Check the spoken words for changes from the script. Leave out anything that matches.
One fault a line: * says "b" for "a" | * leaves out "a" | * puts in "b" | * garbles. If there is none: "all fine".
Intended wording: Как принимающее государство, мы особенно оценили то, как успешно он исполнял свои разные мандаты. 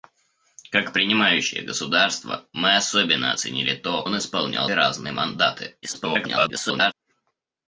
* leaves out "как успешно"
* leaves out "свои"
* garbles